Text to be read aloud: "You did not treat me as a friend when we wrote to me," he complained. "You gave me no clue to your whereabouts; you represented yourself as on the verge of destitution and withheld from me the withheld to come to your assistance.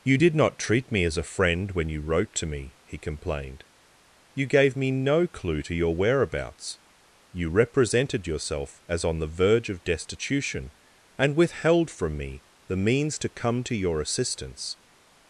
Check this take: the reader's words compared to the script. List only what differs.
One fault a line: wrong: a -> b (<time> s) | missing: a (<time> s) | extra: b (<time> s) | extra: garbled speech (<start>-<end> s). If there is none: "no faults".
wrong: we -> you (1.9 s)
wrong: withheld -> means (12.8 s)